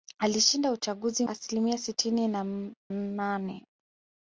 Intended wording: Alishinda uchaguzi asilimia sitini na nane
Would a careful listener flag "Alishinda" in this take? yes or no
no